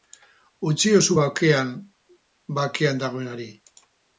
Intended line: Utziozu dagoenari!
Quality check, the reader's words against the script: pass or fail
fail